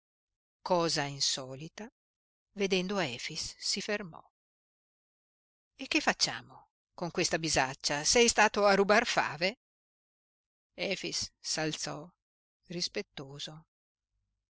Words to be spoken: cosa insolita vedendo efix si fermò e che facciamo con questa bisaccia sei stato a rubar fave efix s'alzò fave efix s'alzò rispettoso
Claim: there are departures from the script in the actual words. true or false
true